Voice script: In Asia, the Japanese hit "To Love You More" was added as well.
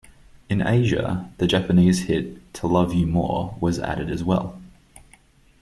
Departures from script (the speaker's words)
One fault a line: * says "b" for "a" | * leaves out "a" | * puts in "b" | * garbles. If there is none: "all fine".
all fine